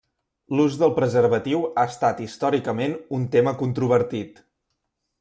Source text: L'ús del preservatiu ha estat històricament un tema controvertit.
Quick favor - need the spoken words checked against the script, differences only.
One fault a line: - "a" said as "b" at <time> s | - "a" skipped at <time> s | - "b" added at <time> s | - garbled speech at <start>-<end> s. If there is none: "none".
none